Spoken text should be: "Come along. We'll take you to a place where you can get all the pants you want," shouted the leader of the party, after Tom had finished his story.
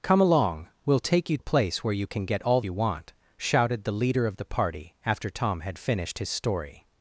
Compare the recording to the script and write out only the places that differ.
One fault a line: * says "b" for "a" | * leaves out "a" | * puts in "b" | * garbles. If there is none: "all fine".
* leaves out "to"
* leaves out "the pants"